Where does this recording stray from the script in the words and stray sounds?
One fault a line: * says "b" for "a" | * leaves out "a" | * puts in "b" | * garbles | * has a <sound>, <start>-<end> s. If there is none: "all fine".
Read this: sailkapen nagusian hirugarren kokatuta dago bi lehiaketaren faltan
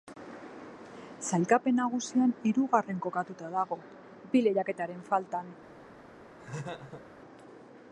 * has a laugh, 6.4-7.1 s